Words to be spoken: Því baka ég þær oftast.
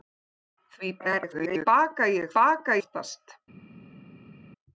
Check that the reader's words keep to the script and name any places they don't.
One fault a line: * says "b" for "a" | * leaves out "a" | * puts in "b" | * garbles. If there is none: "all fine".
* garbles
* says "baka" for "þær"